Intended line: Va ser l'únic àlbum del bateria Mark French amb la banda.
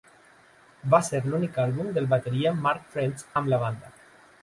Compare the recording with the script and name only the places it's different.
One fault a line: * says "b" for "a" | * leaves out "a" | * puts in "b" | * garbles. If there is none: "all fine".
all fine